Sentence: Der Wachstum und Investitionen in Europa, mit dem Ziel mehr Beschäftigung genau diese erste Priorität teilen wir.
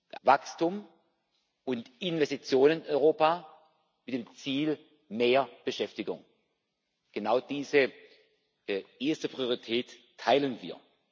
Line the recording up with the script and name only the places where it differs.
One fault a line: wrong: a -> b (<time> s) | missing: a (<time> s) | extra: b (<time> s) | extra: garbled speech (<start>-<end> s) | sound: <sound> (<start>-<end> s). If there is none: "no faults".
no faults